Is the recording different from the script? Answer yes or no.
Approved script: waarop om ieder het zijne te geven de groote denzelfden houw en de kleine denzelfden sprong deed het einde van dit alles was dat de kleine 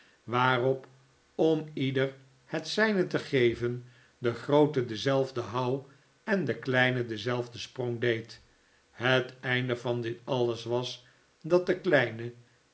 no